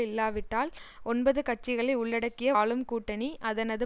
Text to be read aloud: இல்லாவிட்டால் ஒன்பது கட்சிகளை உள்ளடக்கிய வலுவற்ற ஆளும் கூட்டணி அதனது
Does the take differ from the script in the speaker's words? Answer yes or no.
yes